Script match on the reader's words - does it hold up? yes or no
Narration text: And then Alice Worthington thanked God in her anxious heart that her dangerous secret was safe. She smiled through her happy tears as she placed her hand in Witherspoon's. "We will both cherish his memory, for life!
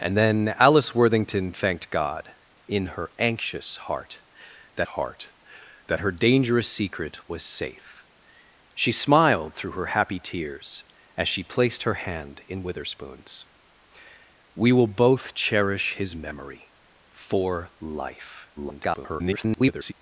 no